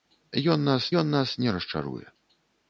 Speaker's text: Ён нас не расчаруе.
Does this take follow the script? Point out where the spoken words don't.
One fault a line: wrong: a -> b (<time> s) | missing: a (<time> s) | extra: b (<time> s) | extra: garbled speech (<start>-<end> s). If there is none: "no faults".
extra: ён нас (1.0 s)